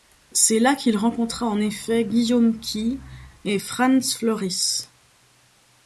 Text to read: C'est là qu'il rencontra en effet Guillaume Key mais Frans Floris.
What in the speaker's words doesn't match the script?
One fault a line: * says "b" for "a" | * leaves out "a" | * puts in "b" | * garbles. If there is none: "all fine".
* says "et" for "mais"